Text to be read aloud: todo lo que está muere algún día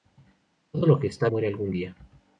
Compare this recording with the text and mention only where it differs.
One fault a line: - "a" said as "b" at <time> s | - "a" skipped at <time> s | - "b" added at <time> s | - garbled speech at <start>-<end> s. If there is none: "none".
none